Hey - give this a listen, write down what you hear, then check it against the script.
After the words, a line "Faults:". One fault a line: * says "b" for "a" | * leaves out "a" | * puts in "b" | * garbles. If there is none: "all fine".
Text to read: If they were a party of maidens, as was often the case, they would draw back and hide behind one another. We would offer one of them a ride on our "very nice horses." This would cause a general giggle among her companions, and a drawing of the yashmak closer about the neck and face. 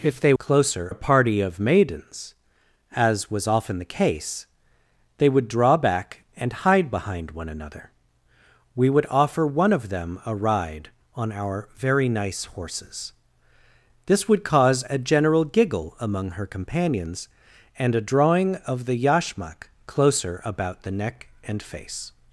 If they closer a party of maidens, as was often the case, they would draw back and hide behind one another. We would offer one of them a ride on our "very nice horses." This would cause a general giggle among her companions, and a drawing of the yashmak closer about the neck and face.
Faults:
* says "closer" for "were"